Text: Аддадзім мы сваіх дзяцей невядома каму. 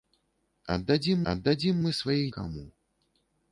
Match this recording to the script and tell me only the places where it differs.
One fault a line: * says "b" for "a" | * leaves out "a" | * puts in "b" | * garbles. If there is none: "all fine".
* puts in "аддадзім"
* leaves out "дзяцей невядома"